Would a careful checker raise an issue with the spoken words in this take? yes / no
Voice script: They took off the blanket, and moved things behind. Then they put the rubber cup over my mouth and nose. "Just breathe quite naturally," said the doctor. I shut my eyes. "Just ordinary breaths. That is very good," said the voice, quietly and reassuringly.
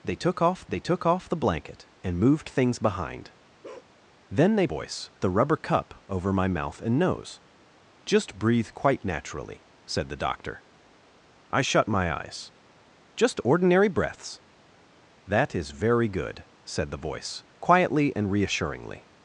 yes